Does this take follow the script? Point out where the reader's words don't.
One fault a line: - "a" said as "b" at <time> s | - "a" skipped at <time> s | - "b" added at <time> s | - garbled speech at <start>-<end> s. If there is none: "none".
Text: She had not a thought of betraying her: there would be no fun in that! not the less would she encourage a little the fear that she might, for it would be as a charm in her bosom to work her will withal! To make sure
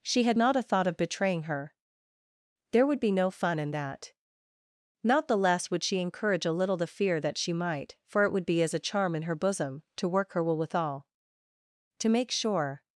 none